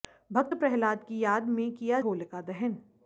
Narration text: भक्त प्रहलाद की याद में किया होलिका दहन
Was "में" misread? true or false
false